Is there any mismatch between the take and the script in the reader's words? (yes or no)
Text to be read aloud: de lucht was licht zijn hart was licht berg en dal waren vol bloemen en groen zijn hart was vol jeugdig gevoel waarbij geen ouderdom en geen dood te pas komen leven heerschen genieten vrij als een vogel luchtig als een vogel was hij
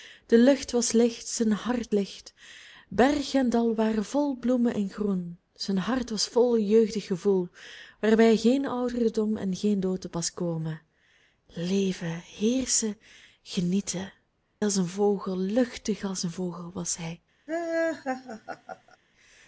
yes